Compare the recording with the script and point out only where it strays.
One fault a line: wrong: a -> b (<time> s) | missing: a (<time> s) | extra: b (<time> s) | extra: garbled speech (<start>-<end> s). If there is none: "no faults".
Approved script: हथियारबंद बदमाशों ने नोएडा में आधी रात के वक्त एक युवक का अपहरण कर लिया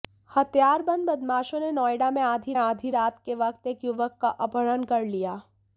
extra: आधी (2.6 s)